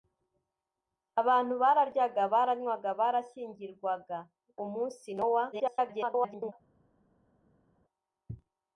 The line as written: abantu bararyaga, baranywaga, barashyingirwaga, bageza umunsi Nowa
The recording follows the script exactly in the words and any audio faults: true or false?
false